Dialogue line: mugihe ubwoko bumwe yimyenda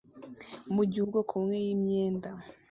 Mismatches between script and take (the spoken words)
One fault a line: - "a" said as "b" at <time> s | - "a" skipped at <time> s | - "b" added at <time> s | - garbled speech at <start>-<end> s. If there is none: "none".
none